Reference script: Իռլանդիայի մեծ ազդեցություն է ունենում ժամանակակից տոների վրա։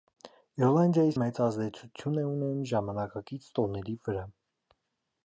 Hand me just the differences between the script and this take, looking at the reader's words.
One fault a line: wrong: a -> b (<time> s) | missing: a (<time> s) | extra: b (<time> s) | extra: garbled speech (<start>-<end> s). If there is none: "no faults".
no faults